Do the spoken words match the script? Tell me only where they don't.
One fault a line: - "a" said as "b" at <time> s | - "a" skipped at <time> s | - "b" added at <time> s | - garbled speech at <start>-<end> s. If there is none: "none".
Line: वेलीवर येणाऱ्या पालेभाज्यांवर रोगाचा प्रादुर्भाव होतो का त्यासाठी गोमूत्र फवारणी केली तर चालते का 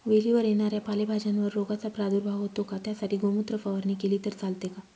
none